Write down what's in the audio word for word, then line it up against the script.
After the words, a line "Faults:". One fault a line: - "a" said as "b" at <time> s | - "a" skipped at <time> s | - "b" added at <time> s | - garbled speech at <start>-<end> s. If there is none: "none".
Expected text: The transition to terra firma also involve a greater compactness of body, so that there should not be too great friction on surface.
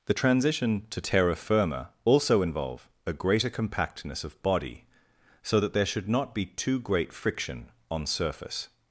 The transition to terra firma also involve a greater compactness of body, so that there should not be too great friction on surface.
Faults:
none